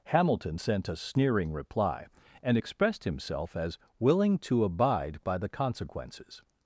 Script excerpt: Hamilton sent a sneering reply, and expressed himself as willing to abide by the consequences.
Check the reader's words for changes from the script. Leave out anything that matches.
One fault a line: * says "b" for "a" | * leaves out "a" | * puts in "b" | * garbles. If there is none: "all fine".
all fine